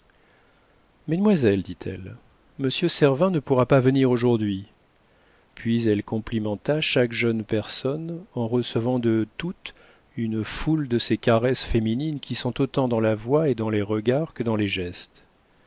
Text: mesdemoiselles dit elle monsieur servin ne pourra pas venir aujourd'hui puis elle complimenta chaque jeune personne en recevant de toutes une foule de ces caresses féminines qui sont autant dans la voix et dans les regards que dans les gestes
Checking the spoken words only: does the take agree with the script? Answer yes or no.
yes